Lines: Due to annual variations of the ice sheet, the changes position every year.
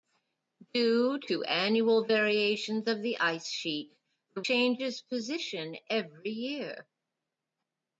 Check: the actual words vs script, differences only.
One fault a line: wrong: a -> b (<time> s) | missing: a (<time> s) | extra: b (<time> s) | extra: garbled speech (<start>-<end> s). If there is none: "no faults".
no faults